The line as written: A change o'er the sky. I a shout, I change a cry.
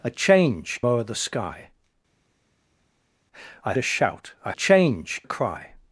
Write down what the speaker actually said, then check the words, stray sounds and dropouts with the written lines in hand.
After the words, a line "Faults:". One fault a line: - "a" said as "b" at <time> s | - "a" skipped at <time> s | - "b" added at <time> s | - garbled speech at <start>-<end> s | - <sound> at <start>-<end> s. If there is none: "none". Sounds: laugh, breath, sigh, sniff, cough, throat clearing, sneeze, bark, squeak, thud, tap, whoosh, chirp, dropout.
A change o'er the sky. I a shout, I change a cry.
Faults:
none